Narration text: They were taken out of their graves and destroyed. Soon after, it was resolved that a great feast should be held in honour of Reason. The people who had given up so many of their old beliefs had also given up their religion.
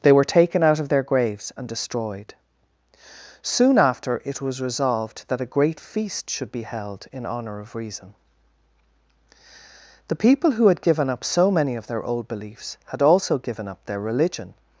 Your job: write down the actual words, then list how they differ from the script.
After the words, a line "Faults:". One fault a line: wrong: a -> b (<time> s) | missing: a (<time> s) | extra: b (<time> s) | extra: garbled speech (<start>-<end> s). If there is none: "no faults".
They were taken out of their graves and destroyed. Soon after, it was resolved that a great feast should be held in honour of Reason. The people who had given up so many of their old beliefs had also given up their religion.
Faults:
no faults